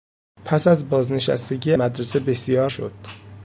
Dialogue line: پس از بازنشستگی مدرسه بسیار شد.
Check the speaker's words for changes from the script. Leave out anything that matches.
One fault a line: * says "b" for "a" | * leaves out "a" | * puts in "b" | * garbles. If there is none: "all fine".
all fine